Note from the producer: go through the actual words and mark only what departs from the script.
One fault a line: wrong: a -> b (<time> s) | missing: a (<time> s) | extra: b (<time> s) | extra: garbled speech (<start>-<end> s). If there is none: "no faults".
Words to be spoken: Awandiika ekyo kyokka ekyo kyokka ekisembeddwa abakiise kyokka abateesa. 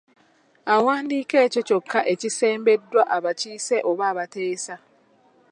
missing: ekyo kyokka (2.0 s)
wrong: kyokka -> oba (3.9 s)